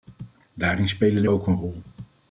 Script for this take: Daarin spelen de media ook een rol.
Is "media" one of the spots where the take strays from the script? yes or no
yes